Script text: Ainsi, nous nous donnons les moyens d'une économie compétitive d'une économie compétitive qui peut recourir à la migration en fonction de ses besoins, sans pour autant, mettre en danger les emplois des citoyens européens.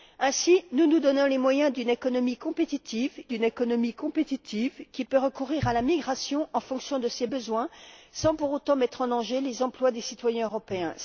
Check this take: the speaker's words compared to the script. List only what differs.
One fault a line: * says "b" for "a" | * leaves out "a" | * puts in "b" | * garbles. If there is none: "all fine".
all fine